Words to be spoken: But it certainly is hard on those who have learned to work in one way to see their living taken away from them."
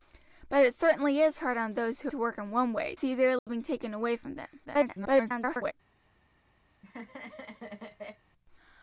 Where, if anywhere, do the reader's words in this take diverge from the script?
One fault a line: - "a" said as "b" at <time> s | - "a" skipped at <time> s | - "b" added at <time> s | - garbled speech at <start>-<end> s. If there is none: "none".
- "have learned" skipped at 2.1 s
- "to" skipped at 2.9 s
- garbled speech at 4.7-5.7 s